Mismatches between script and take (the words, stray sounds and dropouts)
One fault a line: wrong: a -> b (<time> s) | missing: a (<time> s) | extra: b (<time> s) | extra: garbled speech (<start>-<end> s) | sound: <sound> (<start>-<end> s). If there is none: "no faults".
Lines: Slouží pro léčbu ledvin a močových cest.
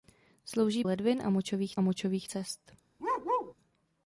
missing: pro léčbu (0.8 s)
extra: močových (1.8 s)
sound: bark (3.0-3.5 s)